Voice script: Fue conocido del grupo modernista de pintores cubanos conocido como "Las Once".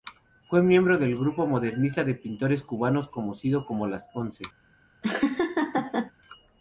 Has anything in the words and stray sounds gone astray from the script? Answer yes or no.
yes